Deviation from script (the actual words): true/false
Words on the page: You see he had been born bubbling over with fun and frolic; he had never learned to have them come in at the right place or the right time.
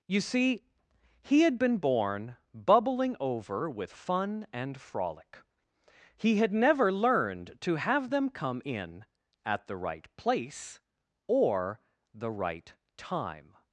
false